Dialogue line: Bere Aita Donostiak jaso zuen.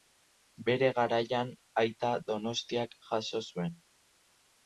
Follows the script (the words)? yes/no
no